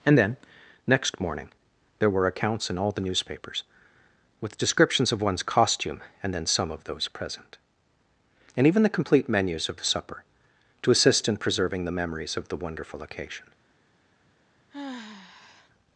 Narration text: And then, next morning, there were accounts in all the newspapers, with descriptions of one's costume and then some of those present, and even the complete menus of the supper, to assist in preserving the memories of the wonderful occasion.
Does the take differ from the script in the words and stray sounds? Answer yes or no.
yes